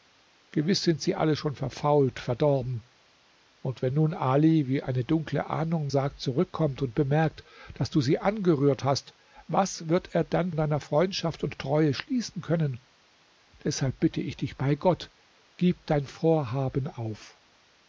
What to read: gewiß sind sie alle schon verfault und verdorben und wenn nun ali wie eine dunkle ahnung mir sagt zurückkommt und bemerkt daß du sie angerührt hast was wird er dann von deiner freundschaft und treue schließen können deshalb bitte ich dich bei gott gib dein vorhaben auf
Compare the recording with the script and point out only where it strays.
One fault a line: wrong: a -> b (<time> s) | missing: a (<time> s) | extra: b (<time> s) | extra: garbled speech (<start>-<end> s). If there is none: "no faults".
missing: und (2.2 s)
missing: mir (5.9 s)
missing: von (10.5 s)